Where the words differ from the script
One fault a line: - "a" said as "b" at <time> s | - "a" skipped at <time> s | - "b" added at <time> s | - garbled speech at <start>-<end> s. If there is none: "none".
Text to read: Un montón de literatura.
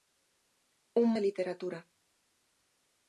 - "montón" skipped at 1.1 s